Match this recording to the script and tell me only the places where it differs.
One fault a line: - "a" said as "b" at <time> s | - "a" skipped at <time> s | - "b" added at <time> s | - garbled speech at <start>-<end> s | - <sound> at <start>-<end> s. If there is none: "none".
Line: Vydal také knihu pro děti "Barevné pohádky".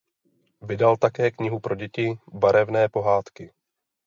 none